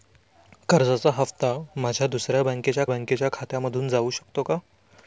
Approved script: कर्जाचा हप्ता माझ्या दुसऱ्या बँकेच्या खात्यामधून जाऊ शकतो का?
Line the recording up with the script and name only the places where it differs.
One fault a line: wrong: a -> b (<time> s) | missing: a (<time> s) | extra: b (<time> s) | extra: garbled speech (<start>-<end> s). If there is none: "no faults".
extra: बँकेच्या (2.9 s)